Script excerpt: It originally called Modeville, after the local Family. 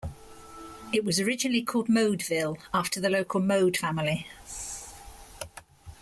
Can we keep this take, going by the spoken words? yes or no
no